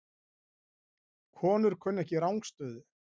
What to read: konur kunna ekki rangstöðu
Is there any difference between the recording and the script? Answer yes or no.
no